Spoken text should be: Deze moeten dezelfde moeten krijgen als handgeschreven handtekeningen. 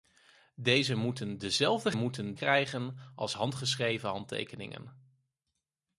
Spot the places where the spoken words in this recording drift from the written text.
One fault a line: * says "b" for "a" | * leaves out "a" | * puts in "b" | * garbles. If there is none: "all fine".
all fine